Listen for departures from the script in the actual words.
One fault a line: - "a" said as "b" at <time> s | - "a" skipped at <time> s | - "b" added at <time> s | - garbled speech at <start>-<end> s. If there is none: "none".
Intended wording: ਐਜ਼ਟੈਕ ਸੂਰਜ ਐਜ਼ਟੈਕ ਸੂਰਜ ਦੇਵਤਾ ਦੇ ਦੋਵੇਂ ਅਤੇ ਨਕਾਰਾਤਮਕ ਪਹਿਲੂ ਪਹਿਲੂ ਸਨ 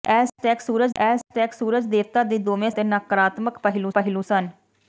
none